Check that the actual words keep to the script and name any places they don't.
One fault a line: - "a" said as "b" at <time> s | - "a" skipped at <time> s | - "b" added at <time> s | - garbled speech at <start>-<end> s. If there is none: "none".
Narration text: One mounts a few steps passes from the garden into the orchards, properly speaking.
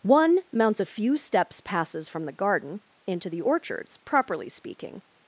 none